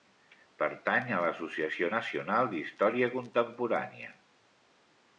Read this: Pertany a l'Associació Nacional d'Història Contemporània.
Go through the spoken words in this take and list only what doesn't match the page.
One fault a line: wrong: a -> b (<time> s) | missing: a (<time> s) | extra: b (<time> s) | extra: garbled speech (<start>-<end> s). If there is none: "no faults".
no faults